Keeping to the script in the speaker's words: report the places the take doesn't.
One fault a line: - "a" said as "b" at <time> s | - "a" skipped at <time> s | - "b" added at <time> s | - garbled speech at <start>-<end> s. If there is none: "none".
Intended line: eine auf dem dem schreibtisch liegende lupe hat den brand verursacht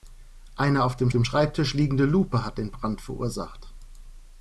none